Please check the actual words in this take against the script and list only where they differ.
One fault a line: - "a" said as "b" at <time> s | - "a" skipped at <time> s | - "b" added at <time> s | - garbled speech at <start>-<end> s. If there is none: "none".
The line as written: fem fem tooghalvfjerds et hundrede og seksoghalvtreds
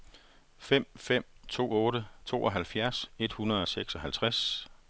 - "to otte" added at 1.5 s